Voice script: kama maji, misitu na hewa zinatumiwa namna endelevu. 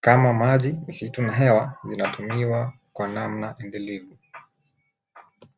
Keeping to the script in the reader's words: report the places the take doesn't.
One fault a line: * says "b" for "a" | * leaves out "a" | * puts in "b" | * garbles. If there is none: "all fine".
* puts in "kwa"